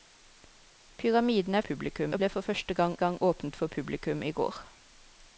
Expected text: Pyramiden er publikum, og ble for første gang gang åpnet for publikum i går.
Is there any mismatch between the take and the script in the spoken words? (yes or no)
no